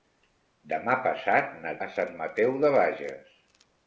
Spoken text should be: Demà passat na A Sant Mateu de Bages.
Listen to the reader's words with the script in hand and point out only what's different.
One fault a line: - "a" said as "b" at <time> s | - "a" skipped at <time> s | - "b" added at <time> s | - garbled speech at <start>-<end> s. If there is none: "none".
none